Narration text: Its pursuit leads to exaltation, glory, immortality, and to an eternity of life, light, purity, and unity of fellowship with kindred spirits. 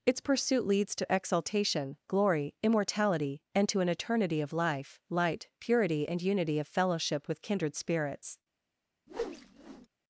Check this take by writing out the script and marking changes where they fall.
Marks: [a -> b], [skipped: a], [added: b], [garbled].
Its pursuit leads to exaltation, glory, immortality, and to an eternity of life, light, purity, and unity of fellowship with kindred spirits.